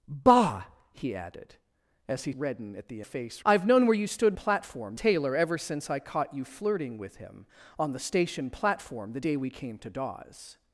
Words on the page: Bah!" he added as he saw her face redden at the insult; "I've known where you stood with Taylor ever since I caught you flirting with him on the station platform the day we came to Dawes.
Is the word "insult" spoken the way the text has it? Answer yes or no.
no